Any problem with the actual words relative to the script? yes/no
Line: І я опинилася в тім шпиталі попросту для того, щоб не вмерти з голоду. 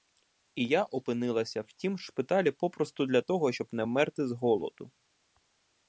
no